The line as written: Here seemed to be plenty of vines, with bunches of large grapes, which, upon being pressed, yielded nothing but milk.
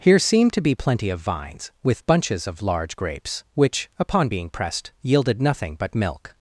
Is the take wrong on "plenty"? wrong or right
right